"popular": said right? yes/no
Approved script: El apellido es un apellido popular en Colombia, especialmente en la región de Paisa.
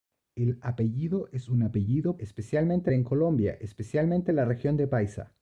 no